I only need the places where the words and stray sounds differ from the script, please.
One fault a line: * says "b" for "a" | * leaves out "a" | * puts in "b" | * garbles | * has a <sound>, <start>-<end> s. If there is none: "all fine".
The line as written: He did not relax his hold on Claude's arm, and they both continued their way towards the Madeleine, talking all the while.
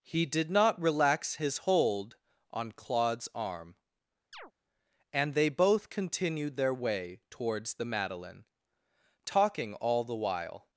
* has a chirp, 4.3-4.5 s